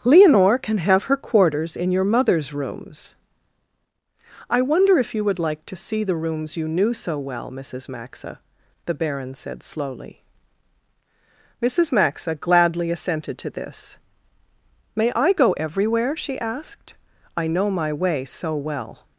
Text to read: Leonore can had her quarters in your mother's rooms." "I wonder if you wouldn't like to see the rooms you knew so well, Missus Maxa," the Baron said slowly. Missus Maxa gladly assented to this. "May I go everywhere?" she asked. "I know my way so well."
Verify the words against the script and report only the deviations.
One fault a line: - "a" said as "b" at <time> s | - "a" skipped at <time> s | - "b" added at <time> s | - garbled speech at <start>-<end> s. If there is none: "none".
- "had" said as "have" at 0.8 s
- "wouldn't" said as "would" at 5.2 s